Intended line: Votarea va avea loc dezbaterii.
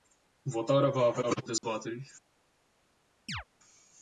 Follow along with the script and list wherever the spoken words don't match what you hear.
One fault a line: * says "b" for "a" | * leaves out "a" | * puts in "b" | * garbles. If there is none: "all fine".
all fine